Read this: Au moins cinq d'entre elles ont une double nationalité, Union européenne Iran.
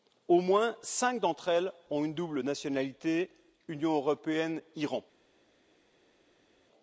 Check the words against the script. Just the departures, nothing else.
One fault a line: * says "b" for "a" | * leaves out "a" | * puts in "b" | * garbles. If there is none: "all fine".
all fine